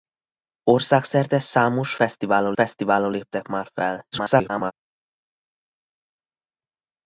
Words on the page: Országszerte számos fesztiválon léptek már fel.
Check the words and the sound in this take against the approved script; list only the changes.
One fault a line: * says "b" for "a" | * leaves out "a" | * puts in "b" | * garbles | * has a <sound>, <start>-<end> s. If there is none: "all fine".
* puts in "fesztiválon"
* garbles